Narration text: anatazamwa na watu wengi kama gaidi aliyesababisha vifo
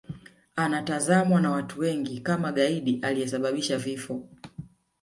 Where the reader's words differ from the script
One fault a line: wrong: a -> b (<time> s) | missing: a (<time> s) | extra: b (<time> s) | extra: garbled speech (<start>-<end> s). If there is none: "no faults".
no faults